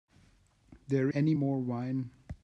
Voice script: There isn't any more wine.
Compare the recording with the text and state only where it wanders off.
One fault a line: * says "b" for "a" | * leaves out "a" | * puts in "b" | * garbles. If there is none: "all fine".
* leaves out "isn't"